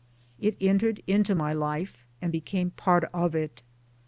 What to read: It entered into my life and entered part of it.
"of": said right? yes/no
yes